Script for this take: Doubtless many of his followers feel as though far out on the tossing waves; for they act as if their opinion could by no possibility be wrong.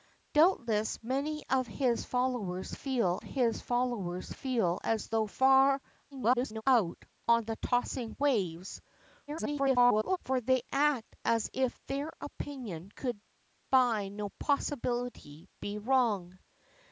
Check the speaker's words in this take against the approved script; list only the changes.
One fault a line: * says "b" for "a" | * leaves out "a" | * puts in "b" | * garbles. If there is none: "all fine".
* puts in "his followers feel"
* garbles
* garbles